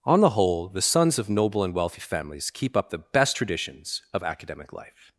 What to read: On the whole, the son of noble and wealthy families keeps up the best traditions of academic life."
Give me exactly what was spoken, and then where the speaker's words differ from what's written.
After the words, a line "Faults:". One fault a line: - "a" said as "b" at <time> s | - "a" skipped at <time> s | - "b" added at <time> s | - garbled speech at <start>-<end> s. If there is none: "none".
On the whole, the sons of noble and wealthy families keep up the best traditions of academic life."
Faults:
- "son" said as "sons" at 0.8 s
- "keeps" said as "keep" at 2.5 s